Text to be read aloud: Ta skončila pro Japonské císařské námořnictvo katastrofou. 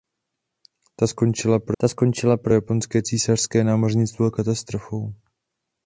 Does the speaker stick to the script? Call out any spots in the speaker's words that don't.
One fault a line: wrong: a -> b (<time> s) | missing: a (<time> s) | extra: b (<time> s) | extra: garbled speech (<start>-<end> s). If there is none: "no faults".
extra: ta skončila pro (1.8 s)